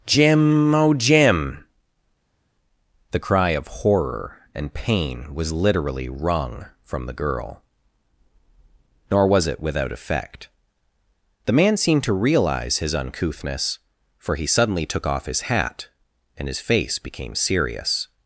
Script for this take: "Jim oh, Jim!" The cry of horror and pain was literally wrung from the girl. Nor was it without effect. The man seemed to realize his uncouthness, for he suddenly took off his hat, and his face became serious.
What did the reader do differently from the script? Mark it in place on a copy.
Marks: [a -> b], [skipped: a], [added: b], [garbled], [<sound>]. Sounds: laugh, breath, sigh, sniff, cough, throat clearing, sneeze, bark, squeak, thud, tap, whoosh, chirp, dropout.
"Jim oh, Jim!" The cry of horror and pain was literally wrung from the girl. Nor was it without effect. The man seemed to realize his uncouthness, for he suddenly took off his hat, and his face became serious.